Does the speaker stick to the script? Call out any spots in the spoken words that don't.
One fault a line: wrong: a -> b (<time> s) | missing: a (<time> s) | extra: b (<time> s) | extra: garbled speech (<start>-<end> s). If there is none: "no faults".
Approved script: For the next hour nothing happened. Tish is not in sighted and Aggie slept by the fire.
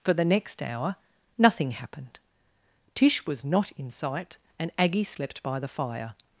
wrong: is -> was (3.3 s)
wrong: sighted -> sight (3.9 s)